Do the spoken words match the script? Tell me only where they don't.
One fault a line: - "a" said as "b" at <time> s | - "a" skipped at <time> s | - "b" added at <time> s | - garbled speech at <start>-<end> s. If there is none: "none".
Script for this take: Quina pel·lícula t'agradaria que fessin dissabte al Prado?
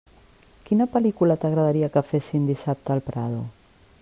none